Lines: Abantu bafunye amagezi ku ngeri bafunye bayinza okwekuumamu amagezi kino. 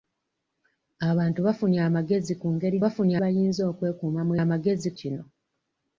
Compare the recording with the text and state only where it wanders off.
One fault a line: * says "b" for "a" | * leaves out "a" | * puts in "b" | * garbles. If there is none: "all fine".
all fine